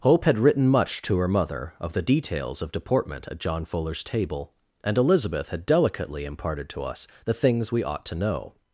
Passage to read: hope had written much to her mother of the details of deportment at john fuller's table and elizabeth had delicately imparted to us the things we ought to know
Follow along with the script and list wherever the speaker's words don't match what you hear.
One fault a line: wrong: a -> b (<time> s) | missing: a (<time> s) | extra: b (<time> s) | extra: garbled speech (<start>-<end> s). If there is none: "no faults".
no faults